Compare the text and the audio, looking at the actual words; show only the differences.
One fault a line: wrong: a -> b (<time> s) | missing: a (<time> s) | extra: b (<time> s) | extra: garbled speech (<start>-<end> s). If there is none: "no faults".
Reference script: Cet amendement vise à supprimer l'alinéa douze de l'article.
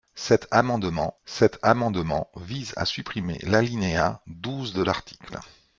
extra: cet amendement (1.3 s)